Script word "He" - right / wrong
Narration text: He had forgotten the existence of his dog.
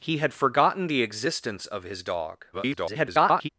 right